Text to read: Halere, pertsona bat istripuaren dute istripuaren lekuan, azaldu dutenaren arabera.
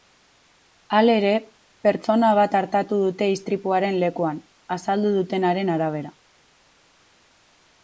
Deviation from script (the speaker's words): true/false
true